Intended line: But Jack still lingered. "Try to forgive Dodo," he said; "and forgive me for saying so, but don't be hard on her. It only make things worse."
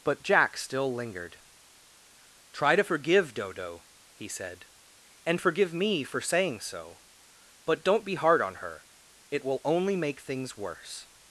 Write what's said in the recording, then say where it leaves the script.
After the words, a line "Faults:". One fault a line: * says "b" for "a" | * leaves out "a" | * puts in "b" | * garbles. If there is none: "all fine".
But Jack still lingered. "Try to forgive Dodo," he said; "and forgive me for saying so, but don't be hard on her. It will only make things worse."
Faults:
* puts in "will"